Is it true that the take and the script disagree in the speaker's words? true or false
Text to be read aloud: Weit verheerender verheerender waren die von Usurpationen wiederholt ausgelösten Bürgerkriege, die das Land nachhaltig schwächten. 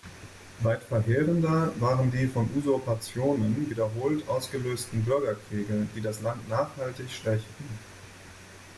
true